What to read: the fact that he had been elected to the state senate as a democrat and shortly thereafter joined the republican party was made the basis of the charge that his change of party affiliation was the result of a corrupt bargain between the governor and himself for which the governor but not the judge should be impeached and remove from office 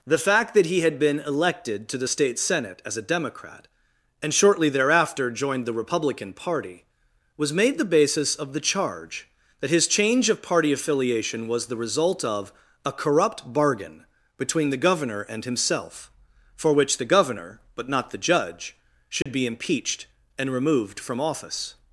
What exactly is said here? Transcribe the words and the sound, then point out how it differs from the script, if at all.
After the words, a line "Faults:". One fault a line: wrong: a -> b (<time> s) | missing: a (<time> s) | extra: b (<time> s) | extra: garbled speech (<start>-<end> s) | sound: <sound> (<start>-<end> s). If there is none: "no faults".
the fact that he had been elected to the state senate as a democrat and shortly thereafter joined the republican party was made the basis of the charge that his change of party affiliation was the result of a corrupt bargain between the governor and himself for which the governor but not the judge should be impeached and removed from office
Faults:
sound: dropout (19.2-19.3 s)
wrong: remove -> removed (20.5 s)